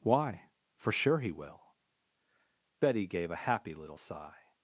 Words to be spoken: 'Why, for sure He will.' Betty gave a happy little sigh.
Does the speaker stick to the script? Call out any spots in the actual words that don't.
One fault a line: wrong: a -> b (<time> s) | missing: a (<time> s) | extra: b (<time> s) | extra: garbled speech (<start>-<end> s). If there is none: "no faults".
no faults